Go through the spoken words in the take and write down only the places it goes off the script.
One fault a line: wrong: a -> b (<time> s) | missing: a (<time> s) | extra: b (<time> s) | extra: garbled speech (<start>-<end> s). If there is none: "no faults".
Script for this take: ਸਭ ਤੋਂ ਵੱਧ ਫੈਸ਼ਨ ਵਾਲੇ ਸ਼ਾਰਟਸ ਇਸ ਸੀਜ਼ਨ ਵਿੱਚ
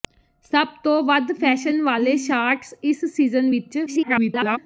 extra: garbled speech (3.9-4.6 s)